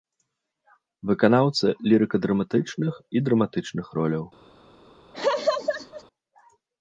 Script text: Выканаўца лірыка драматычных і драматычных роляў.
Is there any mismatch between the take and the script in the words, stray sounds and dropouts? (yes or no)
yes